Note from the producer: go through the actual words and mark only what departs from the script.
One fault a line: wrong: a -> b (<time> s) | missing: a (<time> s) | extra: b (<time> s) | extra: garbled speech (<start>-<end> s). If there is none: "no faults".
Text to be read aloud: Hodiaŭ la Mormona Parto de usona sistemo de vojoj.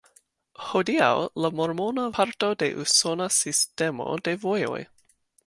no faults